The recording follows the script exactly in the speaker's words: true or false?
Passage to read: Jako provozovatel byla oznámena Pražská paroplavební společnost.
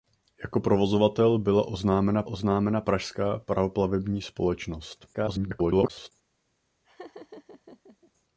false